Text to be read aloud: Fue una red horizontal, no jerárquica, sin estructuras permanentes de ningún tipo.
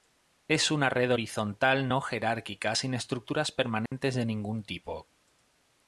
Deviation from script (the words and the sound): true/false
true